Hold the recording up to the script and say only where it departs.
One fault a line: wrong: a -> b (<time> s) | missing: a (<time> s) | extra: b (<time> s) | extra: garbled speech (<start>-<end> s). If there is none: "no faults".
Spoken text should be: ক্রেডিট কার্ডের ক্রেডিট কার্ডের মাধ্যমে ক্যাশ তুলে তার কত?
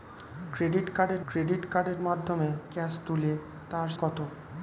no faults